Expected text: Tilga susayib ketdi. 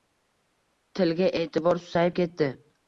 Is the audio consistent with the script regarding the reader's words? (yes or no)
no